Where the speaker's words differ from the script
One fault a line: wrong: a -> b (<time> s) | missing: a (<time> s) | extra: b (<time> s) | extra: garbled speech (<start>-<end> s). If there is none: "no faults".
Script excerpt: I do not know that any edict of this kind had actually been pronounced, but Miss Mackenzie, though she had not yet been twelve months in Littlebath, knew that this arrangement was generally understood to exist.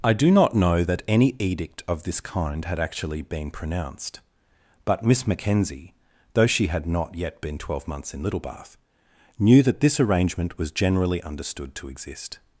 no faults